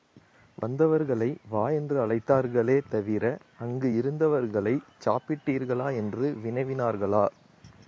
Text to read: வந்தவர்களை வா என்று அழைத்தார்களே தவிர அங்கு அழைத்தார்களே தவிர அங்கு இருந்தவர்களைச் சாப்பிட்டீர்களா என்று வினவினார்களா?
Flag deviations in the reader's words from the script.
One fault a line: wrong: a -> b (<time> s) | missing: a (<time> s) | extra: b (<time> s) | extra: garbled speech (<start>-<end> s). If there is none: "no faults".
missing: அழைத்தார்களே தவிர அங்கு (3.9 s)